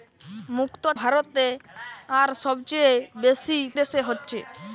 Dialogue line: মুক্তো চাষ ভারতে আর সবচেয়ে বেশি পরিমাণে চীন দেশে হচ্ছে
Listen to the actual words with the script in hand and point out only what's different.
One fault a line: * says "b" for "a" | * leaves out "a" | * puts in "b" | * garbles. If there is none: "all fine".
* leaves out "চাষ"
* leaves out "পরিমাণে চীন"